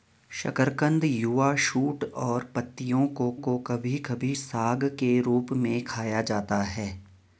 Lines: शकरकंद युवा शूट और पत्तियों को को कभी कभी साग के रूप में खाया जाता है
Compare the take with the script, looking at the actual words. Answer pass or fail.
pass